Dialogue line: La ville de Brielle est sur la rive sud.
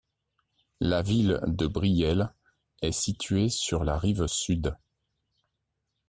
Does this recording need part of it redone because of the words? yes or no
yes